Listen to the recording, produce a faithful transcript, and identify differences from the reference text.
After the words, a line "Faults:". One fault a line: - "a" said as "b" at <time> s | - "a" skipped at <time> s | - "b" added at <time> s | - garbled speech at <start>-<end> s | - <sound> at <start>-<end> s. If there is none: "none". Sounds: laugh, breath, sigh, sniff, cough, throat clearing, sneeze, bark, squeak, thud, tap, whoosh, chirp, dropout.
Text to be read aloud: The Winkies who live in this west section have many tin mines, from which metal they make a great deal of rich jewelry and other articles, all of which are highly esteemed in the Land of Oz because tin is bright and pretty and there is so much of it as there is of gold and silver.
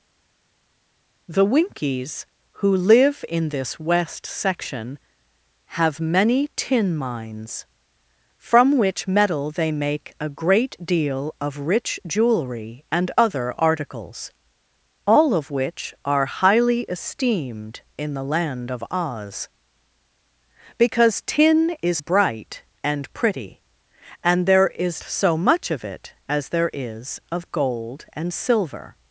The Winkies who live in this west section have many tin mines, from which metal they make a great deal of rich jewelry and other articles, all of which are highly esteemed in the Land of Oz because tin is bright and pretty and there is so much of it as there is of gold and silver.
Faults:
none